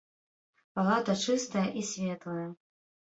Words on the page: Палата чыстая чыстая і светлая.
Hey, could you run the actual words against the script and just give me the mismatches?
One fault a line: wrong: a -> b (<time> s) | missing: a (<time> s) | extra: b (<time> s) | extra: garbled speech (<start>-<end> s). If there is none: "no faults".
missing: чыстая (1.6 s)